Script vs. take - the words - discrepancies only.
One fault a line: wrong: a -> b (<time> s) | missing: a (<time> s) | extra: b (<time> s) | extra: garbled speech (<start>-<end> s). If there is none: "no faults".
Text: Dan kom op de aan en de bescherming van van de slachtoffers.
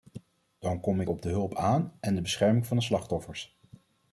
extra: ik (1.0 s)
extra: hulp (1.3 s)
missing: van (2.8 s)